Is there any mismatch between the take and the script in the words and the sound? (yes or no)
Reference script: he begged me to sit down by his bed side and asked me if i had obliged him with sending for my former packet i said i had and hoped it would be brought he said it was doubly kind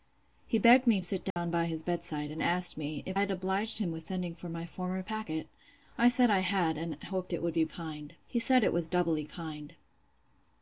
yes